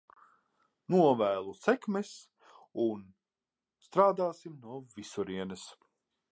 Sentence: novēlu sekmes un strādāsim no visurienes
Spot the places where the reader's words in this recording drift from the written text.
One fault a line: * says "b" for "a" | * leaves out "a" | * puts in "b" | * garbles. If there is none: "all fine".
all fine